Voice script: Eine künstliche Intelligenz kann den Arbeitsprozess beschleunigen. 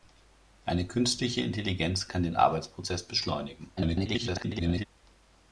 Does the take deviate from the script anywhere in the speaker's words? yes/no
yes